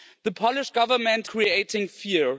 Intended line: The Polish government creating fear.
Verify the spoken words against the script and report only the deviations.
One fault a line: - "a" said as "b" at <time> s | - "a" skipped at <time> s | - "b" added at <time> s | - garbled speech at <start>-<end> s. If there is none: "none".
none